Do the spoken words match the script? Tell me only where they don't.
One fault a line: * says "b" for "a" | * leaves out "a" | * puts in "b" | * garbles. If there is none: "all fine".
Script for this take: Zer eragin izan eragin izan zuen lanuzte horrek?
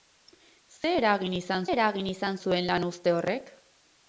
all fine